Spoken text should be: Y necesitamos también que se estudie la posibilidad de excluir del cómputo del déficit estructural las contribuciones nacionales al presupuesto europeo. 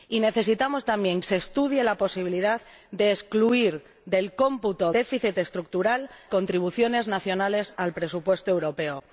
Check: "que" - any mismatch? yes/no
yes